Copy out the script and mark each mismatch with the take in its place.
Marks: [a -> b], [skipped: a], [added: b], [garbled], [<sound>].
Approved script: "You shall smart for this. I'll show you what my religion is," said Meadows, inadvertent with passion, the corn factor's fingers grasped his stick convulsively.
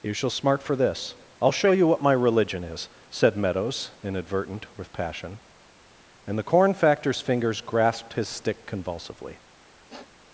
"You shall smart for this. I'll show you what my religion is," said Meadows, inadvertent with passion, [added: and] the corn factor's fingers grasped his stick convulsively. [sniff]